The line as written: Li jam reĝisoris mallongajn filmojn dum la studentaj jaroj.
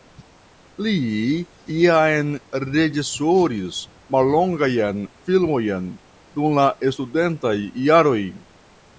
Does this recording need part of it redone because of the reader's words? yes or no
no